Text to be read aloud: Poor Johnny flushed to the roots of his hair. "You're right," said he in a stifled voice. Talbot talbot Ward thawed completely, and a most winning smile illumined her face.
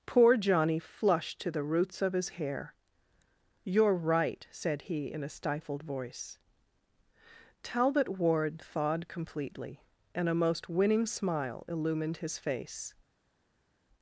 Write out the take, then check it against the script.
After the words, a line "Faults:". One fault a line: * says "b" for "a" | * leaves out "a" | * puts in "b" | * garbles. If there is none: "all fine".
Poor Johnny flushed to the roots of his hair. "You're right," said he in a stifled voice. Talbot Ward thawed completely, and a most winning smile illumined his face.
Faults:
* leaves out "talbot"
* says "his" for "her"